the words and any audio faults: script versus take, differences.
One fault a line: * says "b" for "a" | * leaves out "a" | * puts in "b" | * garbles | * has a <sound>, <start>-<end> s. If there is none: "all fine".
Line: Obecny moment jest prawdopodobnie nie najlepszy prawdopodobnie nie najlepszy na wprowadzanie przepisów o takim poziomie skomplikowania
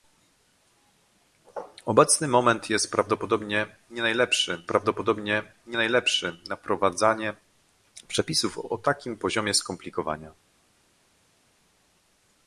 all fine